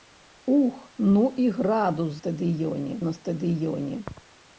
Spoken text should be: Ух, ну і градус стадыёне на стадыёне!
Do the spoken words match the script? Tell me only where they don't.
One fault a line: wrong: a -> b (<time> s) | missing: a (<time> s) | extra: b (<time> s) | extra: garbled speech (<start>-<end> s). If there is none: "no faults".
no faults